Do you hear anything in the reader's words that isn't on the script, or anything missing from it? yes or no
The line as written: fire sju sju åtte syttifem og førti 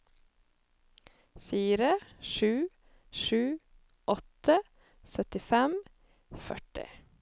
no